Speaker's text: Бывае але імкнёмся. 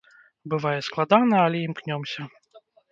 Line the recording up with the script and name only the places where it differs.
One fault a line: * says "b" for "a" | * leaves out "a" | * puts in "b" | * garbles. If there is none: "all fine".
* puts in "складана"